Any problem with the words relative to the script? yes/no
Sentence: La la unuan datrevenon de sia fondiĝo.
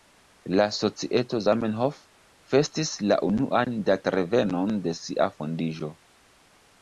yes